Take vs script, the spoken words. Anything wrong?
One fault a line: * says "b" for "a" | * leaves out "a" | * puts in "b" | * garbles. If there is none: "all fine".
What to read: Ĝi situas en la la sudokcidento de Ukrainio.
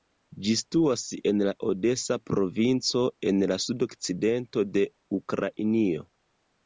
* puts in "odesa provinco en"